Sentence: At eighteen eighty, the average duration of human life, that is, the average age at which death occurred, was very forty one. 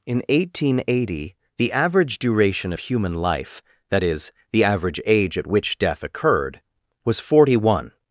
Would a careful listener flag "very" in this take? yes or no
yes